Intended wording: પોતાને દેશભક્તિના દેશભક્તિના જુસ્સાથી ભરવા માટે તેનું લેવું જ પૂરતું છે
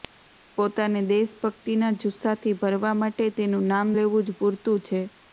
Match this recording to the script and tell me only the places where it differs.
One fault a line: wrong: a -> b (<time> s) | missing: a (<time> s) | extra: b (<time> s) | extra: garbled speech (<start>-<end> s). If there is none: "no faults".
missing: દેશભક્તિના (1.9 s)
extra: નામ (3.7 s)